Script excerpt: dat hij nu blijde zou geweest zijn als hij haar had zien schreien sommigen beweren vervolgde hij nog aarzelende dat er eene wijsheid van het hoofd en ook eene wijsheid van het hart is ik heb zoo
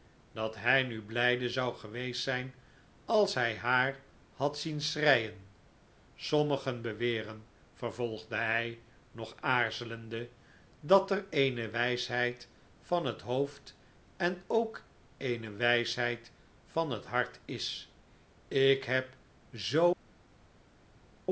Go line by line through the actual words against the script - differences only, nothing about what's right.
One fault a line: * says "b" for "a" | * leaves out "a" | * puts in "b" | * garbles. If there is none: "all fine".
all fine